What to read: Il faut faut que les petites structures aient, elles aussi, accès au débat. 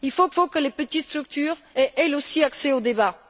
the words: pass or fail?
pass